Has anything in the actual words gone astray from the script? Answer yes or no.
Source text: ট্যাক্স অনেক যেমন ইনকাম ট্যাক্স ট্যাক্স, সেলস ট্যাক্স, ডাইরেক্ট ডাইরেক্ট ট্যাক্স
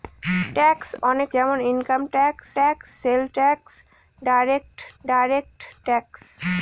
no